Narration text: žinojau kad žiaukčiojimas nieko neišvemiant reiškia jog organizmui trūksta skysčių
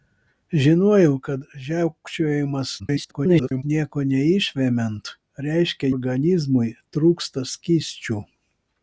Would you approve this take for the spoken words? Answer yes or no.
no